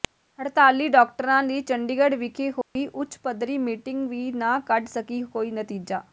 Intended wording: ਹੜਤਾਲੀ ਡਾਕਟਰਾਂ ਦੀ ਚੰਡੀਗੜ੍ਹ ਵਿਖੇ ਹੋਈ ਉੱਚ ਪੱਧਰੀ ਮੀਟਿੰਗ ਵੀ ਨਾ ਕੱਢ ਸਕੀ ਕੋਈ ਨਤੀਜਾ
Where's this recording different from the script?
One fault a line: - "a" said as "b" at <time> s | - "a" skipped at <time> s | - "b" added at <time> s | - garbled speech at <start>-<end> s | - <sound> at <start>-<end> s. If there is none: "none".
- dropout at 2.6-2.8 s